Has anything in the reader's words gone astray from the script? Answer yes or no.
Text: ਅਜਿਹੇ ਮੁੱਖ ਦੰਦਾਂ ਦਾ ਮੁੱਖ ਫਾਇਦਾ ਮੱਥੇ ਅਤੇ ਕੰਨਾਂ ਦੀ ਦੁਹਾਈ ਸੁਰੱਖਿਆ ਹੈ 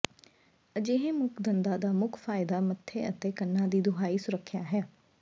no